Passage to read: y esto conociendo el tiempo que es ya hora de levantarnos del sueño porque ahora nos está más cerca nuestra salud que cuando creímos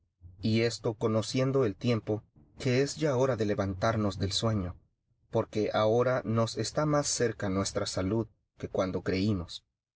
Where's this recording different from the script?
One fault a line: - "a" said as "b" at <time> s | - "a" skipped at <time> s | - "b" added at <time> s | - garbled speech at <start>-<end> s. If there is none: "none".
none